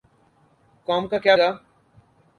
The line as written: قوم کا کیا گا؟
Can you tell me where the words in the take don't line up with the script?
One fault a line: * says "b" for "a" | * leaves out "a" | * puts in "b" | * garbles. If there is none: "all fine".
all fine